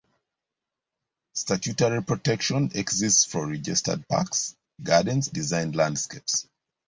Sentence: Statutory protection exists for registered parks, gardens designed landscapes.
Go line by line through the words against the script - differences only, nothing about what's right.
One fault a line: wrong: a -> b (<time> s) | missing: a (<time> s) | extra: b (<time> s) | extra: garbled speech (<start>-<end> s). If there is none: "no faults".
no faults